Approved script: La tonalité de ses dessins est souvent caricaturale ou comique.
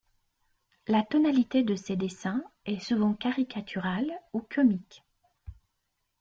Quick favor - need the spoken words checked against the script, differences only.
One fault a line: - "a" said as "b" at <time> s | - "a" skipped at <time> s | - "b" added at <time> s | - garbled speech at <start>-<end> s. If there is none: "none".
none